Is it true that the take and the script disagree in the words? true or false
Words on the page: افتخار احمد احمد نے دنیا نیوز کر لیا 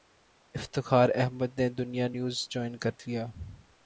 true